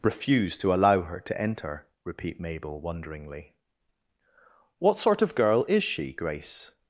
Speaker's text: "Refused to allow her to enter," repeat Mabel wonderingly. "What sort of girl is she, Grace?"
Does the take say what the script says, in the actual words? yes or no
yes